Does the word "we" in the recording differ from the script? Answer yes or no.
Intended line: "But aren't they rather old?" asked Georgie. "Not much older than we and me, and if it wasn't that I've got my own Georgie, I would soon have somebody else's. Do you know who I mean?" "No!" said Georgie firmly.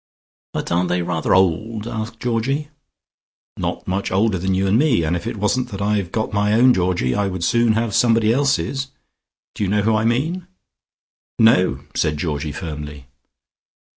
yes